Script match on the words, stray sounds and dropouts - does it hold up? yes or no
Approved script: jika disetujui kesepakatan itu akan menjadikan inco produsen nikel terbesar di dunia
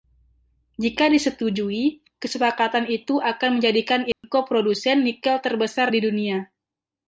no